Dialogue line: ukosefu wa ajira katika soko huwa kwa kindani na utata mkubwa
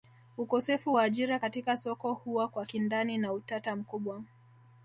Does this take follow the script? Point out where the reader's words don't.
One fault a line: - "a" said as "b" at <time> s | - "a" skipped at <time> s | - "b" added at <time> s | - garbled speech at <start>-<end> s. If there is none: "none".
none